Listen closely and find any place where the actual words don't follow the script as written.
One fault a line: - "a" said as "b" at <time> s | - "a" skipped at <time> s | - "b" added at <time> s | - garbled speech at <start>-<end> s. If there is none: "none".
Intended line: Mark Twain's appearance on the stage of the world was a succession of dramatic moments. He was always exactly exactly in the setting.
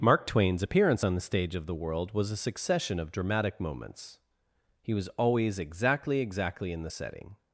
none